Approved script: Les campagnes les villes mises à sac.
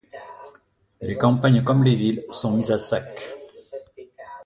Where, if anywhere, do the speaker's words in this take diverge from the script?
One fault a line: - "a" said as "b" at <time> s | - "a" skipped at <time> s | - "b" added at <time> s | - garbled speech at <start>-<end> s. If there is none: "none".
- "comme" added at 1.6 s
- "sont" added at 2.3 s